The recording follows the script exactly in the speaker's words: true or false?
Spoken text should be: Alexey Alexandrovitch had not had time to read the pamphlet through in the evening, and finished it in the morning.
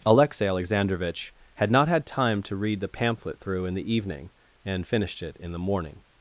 true